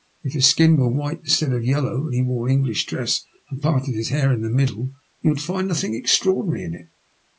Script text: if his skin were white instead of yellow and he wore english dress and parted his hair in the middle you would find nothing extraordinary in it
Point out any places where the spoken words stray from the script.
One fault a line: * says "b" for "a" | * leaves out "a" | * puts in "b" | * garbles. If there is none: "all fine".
all fine